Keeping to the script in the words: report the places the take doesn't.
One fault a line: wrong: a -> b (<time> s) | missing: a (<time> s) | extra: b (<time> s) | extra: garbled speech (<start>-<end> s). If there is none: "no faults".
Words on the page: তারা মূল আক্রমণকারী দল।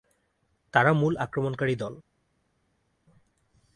no faults